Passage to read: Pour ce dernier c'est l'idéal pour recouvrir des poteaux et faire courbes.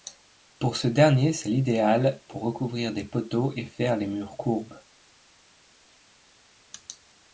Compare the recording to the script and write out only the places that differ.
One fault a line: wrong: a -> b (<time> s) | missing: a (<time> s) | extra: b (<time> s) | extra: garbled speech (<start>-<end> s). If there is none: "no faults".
extra: les murs (4.0 s)